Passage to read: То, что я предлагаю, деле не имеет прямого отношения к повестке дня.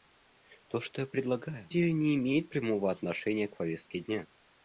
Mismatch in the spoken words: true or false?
false